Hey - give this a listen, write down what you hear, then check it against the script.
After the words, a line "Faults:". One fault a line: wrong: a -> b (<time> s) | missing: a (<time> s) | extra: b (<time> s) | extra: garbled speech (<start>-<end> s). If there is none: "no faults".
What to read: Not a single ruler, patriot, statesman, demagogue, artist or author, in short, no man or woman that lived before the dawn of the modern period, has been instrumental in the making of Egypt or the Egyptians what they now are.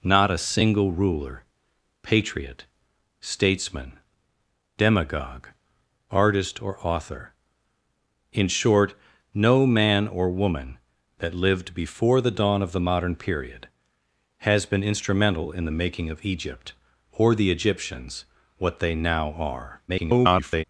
Not a single ruler, patriot, statesman, demagogue, artist or author, in short, no man or woman that lived before the dawn of the modern period, has been instrumental in the making of Egypt or the Egyptians what they now are. [garbled]
Faults:
extra: garbled speech (19.9-20.6 s)